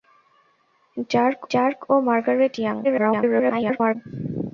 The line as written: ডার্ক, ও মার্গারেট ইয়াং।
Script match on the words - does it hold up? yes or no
no